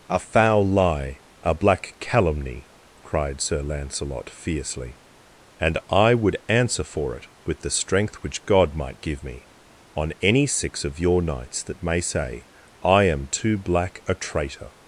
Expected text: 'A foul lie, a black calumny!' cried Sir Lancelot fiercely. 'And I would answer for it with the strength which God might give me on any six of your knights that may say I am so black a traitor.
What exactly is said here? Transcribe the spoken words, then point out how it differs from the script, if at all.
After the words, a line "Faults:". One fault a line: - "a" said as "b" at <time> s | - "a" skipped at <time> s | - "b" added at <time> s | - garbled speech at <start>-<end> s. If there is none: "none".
'A foul lie, a black calumny!' cried Sir Lancelot fiercely. 'And I would answer for it with the strength which God might give me on any six of your knights that may say I am too black a traitor.
Faults:
- "so" said as "too" at 13.3 s